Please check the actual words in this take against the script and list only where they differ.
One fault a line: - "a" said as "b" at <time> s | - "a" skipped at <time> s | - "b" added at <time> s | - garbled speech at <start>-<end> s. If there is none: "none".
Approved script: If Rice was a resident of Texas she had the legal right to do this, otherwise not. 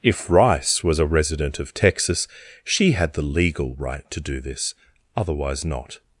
none